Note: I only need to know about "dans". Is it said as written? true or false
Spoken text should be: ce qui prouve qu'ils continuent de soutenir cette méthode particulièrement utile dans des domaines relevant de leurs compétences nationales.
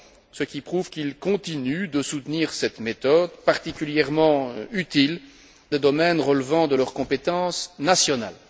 false